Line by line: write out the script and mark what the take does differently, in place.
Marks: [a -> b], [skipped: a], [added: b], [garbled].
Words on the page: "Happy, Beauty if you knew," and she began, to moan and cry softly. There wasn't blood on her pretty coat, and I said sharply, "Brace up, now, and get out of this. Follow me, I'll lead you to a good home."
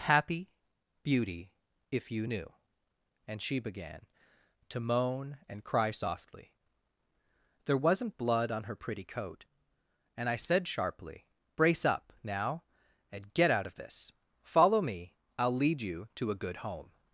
"Happy, Beauty if you knew," and she began, to moan and cry softly. There wasn't blood on her pretty coat, and I said sharply, "Brace up, now, and get out of this. Follow me, I'll lead you to a good home."